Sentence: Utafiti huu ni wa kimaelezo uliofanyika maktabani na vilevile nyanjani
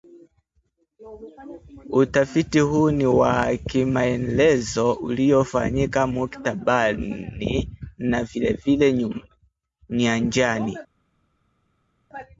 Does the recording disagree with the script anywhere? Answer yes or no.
no